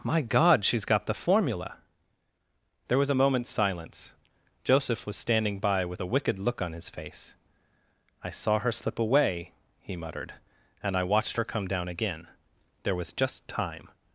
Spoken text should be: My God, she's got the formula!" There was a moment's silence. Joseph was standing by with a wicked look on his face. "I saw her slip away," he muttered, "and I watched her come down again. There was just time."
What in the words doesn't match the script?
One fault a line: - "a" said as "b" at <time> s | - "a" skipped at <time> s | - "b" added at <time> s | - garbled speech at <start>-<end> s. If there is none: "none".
none